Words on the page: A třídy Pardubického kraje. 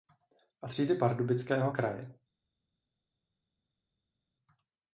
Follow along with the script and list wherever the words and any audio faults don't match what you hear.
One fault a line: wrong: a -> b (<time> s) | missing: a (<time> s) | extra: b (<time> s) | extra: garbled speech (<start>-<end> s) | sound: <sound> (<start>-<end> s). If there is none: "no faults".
no faults